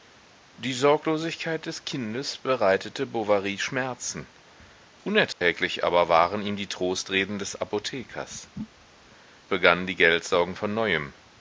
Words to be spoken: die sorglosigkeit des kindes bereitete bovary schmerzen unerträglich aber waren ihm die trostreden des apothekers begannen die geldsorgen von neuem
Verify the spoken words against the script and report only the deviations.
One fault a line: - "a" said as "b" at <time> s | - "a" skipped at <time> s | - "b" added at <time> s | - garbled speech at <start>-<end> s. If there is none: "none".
none